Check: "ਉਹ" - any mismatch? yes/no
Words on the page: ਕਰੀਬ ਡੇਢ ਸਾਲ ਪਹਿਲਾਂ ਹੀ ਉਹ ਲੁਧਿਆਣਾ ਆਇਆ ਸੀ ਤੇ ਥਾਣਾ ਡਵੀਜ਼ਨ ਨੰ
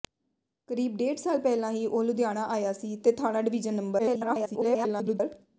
no